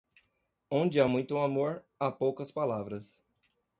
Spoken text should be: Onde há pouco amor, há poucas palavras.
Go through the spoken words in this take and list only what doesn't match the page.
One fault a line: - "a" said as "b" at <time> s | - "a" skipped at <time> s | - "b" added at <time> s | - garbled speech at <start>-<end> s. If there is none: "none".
- "pouco" said as "muito" at 1.1 s